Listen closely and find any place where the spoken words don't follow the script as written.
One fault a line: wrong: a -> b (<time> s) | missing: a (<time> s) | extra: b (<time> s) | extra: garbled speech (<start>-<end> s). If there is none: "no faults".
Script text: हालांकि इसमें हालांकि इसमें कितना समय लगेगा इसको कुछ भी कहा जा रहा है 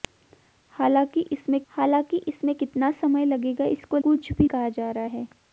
no faults